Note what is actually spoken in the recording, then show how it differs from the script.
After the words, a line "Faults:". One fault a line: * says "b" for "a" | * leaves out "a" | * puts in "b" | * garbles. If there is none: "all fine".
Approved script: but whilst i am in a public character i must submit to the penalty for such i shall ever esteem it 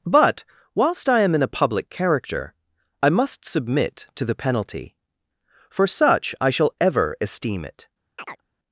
but whilst i am in a public character i must submit to the penalty for such i shall ever esteem it
Faults:
all fine